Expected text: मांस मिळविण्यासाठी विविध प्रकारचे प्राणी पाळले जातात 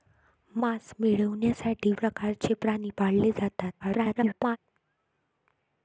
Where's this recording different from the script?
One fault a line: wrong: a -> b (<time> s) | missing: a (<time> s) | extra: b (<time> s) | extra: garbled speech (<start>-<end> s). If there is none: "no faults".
missing: विविध (1.9 s)
extra: garbled speech (3.8-4.6 s)